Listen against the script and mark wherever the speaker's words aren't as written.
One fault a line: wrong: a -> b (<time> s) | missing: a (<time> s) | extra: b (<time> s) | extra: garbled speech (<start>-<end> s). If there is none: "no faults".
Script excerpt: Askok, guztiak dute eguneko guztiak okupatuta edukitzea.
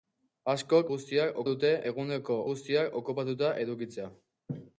no faults